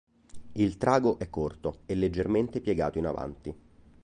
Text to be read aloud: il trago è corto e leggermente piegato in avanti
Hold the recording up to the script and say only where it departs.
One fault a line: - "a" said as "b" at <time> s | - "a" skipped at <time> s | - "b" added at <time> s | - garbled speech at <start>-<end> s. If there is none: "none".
none